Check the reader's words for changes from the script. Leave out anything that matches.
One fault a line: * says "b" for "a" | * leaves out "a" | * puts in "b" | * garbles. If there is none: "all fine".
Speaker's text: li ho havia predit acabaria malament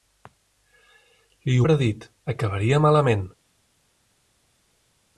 * leaves out "ho havia"